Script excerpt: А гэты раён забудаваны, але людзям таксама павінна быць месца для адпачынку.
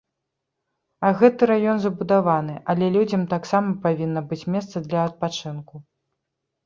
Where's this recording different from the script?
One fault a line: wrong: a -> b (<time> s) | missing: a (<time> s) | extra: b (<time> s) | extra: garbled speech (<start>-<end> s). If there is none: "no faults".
no faults